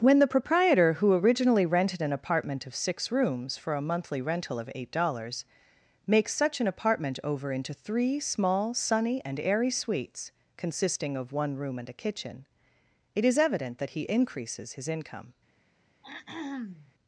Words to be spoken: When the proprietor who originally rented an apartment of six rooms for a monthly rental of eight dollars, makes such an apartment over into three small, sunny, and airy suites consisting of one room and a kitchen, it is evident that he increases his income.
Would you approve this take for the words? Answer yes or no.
yes